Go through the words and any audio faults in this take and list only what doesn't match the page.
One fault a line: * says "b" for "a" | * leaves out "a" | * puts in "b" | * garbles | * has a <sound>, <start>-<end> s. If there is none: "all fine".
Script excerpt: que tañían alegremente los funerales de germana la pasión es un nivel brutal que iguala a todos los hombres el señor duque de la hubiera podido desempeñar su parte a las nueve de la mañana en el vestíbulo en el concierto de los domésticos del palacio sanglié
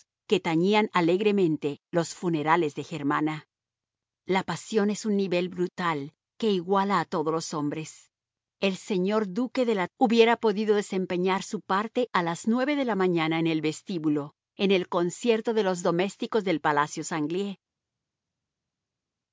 all fine